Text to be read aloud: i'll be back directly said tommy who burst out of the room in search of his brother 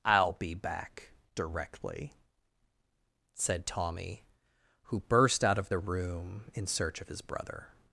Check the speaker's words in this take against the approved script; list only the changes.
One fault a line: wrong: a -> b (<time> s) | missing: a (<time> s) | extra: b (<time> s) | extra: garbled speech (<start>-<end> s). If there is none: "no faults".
no faults